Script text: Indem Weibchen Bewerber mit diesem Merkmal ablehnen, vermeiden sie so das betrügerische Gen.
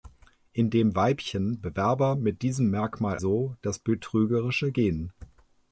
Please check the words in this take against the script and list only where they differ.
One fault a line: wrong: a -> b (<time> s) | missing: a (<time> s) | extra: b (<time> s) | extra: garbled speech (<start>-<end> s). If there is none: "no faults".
missing: ablehnen vermeiden sie (3.2 s)